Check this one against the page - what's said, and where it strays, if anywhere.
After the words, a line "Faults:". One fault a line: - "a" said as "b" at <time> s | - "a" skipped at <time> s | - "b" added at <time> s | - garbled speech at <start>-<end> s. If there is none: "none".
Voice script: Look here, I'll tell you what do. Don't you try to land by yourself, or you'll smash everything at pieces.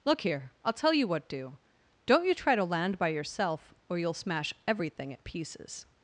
Look here, I'll tell you what do. Don't you try to land by yourself, or you'll smash everything at pieces.
Faults:
none